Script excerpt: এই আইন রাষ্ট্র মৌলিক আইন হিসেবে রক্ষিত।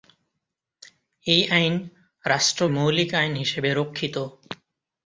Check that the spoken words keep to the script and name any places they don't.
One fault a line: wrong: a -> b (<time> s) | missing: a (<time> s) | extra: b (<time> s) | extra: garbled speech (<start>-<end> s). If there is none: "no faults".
no faults